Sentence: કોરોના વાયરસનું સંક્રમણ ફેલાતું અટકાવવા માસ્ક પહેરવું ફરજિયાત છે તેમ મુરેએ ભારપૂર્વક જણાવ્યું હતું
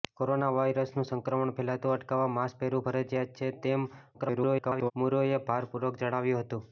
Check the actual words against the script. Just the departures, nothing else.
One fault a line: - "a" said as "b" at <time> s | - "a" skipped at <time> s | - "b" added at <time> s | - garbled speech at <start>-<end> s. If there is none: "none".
- garbled speech at 4.1-4.9 s